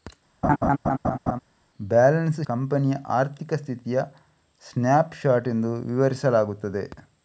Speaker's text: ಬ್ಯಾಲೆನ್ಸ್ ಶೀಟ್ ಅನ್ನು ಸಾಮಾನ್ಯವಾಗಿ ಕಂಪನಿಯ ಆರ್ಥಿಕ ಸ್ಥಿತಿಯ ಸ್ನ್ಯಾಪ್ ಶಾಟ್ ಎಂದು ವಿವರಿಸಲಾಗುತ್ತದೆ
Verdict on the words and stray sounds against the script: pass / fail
fail